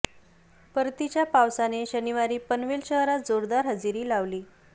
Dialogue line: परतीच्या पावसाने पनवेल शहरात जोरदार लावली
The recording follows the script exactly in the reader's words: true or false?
false